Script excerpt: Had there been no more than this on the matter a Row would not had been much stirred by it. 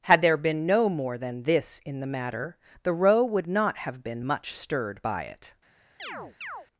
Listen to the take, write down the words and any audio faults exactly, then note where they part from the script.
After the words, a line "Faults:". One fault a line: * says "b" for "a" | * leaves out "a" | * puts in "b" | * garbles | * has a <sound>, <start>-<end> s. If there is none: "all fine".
Had there been no more than this in the matter the Row would not have been much stirred by it.
Faults:
* says "in" for "on"
* says "the" for "a"
* says "have" for "had"
* has a chirp, 6.0-6.7 s